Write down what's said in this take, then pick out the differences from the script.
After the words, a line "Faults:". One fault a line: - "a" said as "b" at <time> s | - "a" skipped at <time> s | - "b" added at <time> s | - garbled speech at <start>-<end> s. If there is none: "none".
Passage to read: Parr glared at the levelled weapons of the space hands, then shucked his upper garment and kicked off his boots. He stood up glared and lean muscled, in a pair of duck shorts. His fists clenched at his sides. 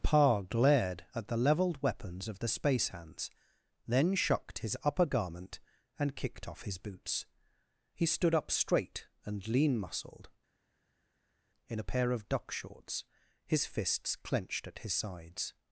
Parr glared at the levelled weapons of the space hands, then shucked his upper garment and kicked off his boots. He stood up straight and lean muscled, in a pair of duck shorts. His fists clenched at his sides.
Faults:
- "glared" said as "straight" at 8.5 s